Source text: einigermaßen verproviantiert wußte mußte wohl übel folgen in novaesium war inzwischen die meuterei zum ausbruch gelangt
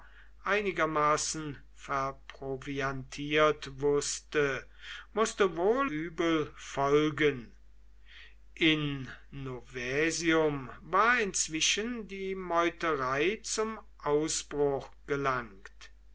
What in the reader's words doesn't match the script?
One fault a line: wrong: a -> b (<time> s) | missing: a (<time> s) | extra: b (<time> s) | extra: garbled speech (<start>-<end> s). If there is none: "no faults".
no faults